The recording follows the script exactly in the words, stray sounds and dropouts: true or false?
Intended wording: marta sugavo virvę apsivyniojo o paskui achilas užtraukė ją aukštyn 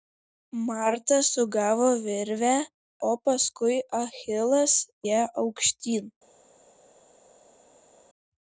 false